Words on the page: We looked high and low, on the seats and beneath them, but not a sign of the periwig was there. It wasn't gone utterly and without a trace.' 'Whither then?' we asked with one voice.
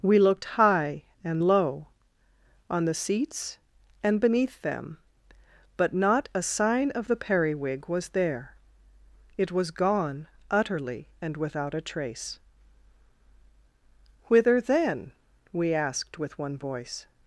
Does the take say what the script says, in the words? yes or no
no